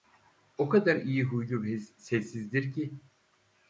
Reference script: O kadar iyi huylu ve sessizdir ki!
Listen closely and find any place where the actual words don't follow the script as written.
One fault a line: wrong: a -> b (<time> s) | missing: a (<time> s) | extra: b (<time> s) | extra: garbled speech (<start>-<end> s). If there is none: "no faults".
no faults